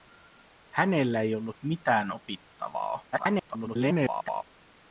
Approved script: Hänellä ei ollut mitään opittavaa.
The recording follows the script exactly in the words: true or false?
false